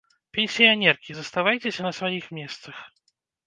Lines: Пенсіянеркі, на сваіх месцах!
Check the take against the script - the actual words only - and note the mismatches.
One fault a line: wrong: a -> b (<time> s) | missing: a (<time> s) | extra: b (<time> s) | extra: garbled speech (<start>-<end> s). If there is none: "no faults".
extra: заставайцеся (1.2 s)